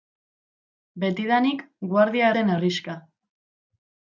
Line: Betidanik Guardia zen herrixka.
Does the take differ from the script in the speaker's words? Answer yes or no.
no